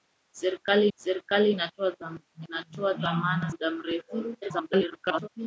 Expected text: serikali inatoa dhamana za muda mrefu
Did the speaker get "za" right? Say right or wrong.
wrong